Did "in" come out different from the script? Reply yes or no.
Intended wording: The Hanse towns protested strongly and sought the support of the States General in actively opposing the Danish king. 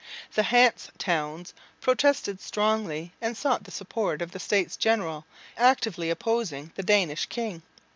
yes